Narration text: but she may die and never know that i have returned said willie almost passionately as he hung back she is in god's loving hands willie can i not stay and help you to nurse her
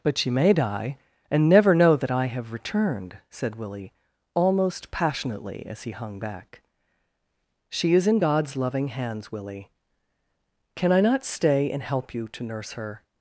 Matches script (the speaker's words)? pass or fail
pass